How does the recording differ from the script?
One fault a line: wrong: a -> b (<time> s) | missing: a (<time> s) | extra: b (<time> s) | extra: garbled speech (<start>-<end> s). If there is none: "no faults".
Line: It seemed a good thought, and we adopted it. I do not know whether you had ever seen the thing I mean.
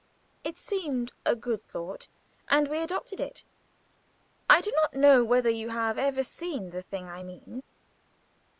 wrong: had -> have (5.7 s)